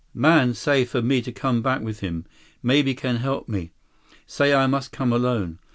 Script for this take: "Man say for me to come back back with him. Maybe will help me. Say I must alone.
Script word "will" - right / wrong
wrong